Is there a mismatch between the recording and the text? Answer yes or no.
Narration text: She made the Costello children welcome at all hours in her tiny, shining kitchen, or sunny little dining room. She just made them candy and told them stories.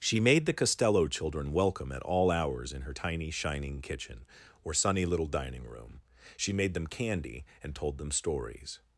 yes